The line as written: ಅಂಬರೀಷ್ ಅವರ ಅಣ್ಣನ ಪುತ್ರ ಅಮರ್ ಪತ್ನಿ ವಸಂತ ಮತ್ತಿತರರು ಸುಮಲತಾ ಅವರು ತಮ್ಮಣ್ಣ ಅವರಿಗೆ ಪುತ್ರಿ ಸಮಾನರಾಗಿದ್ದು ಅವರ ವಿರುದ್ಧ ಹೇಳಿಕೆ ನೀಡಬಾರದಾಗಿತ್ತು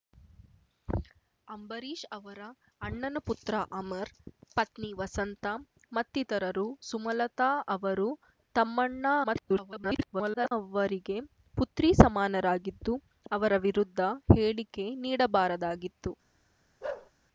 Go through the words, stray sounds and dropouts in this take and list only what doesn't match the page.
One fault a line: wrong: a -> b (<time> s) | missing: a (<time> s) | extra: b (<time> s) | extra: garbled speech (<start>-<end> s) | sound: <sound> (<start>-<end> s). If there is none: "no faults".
extra: garbled speech (9.2-10.5 s)
sound: bark (16.8-17.1 s)